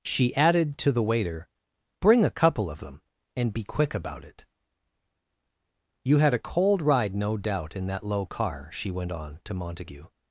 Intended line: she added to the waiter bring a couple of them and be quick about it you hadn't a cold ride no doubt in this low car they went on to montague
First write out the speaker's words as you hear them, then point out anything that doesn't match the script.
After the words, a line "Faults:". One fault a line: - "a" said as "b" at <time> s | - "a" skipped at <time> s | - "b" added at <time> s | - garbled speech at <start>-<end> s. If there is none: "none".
she added to the waiter bring a couple of them and be quick about it you had a cold ride no doubt in that low car she went on to montague
Faults:
- "hadn't" said as "had" at 6.2 s
- "this" said as "that" at 7.9 s
- "they" said as "she" at 8.7 s